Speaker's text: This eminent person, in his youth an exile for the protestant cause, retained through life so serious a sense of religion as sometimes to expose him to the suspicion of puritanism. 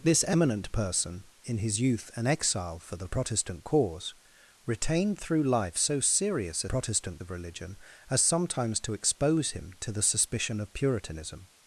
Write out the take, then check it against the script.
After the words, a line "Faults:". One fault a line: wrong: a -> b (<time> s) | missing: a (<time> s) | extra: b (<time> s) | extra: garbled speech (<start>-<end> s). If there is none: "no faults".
This eminent person, in his youth an exile for the protestant cause, retained through life so serious a protestant of religion as sometimes to expose him to the suspicion of puritanism.
Faults:
wrong: sense -> protestant (6.6 s)